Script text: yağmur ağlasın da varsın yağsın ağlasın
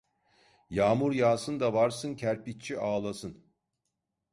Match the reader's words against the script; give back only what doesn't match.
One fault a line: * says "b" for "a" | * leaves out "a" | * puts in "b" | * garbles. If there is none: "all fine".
* says "yağsın" for "ağlasın"
* says "kerpiççi" for "yağsın"